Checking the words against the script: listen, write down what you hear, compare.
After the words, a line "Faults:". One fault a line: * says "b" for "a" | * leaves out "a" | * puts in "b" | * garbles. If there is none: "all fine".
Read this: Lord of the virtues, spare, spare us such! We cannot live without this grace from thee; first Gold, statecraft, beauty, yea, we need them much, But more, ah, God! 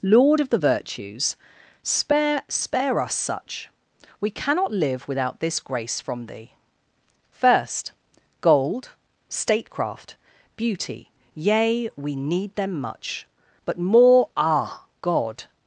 Lord of the virtues, spare, spare us such! We cannot live without this grace from thee; first Gold, statecraft, beauty, yea, we need them much, But more, ah, God!
Faults:
all fine